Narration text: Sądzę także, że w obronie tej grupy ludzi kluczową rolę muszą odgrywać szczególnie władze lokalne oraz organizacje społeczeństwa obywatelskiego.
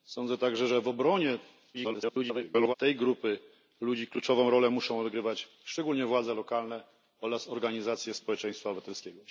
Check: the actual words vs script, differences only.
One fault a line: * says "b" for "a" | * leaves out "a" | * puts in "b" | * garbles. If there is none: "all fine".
* garbles